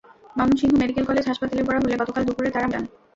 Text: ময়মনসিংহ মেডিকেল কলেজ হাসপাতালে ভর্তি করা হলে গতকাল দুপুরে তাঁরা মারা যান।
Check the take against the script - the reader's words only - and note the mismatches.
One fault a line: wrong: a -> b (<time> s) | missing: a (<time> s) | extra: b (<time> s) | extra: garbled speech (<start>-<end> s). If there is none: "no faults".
missing: ভর্তি (1.6 s)
missing: মারা (2.7 s)